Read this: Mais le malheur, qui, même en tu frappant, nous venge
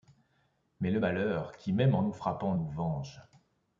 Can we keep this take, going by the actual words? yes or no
no